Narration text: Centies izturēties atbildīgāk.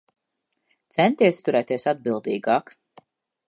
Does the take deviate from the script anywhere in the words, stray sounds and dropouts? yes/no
no